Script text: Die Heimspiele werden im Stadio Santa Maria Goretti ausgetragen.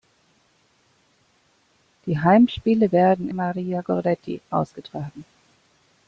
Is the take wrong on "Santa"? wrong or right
wrong